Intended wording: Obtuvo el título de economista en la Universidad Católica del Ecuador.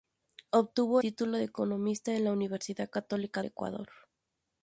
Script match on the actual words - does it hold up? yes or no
no